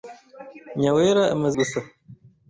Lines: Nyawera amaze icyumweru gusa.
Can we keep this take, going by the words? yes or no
no